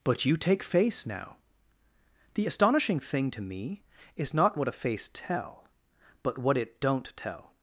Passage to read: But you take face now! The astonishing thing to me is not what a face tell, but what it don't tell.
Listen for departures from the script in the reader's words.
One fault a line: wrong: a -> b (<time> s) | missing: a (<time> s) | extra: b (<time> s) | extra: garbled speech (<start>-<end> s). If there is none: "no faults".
no faults